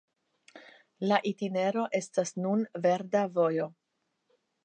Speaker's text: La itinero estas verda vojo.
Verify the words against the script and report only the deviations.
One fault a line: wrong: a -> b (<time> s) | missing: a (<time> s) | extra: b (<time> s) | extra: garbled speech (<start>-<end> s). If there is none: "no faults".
extra: nun (2.5 s)